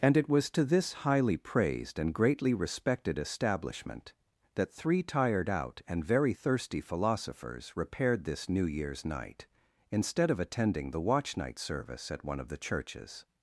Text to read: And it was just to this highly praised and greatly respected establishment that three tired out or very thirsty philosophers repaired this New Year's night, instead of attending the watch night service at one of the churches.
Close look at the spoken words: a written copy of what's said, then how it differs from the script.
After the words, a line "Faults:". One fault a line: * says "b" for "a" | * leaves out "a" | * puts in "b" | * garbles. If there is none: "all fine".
And it was to this highly praised and greatly respected establishment that three tired out and very thirsty philosophers repaired this New Year's night, instead of attending the watch night service at one of the churches.
Faults:
* leaves out "just"
* says "and" for "or"